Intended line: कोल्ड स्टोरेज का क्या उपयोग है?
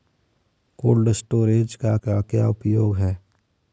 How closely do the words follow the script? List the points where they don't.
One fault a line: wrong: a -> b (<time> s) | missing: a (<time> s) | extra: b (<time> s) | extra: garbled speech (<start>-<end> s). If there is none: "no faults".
extra: का (2.0 s)